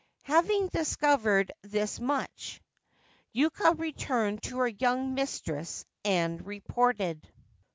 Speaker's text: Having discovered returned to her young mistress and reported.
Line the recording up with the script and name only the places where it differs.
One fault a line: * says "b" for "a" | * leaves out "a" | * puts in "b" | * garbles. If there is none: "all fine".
* puts in "this much Yuka"